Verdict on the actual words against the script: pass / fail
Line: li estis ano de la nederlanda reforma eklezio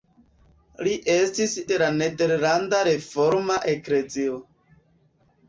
fail